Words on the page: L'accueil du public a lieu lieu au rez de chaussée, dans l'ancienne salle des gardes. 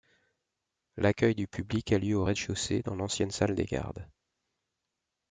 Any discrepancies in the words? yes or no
yes